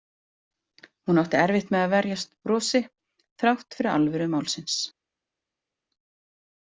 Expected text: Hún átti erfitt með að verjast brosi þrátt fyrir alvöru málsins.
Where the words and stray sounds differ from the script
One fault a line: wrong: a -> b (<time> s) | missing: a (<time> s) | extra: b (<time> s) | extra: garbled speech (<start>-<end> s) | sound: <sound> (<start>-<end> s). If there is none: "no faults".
no faults